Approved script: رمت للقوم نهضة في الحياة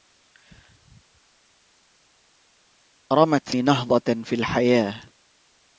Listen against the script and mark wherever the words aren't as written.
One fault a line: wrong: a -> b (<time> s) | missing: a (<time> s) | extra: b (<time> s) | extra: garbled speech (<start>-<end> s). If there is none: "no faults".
missing: للقوم (3.5 s)